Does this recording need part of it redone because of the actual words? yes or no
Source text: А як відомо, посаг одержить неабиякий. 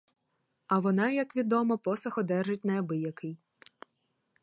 yes